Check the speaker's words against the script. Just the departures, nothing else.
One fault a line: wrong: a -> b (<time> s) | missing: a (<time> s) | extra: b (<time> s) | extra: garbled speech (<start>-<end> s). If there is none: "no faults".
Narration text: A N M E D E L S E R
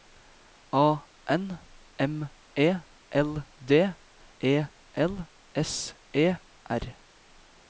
extra: L (3.1 s)